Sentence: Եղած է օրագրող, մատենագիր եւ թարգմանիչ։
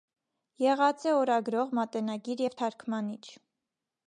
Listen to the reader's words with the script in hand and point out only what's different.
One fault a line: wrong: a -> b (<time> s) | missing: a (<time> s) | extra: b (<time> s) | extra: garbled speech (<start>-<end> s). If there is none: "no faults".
no faults